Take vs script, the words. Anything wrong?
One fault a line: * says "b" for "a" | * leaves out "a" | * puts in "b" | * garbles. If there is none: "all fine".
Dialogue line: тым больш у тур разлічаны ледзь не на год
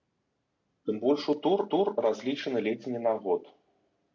* puts in "тур"